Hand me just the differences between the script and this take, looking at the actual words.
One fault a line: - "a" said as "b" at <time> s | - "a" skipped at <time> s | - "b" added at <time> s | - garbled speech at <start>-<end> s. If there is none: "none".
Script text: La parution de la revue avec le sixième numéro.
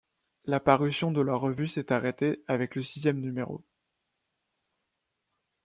- "s'est arrêtée" added at 1.7 s